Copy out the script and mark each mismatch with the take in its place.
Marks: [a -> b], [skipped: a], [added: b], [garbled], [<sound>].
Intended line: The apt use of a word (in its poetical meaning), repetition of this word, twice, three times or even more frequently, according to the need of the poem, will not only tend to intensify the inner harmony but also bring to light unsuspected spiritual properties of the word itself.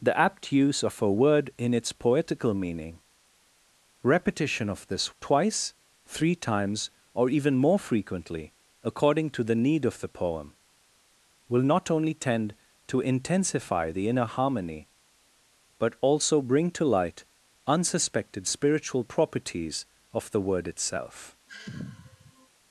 The apt use of a word (in its poetical meaning), repetition of this [skipped: word,] twice, three times or even more frequently, according to the need of the poem, will not only tend to intensify the inner harmony but also bring to light unsuspected spiritual properties of the word itself. [sigh]